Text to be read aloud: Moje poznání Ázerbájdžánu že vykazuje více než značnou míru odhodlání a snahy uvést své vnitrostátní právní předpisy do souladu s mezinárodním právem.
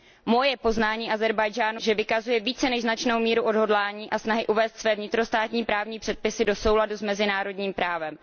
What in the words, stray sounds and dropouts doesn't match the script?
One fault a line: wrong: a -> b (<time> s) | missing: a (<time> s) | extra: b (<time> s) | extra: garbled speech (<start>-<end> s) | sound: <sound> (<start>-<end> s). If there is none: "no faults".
no faults